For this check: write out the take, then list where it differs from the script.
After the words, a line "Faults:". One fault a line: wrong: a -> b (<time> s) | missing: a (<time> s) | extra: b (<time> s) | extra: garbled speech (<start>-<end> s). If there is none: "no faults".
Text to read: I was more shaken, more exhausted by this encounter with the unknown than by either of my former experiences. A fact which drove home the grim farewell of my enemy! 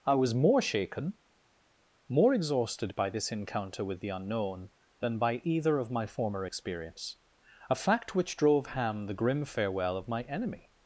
I was more shaken, more exhausted by this encounter with the unknown than by either of my former experience. A fact which drove ham the grim farewell of my enemy!
Faults:
wrong: experiences -> experience (6.4 s)
wrong: home -> ham (8.7 s)